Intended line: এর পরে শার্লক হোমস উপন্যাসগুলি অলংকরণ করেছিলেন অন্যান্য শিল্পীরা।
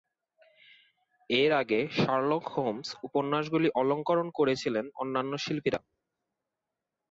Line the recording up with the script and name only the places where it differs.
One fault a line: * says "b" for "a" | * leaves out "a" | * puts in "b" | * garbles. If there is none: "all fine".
* says "আগে" for "পরে"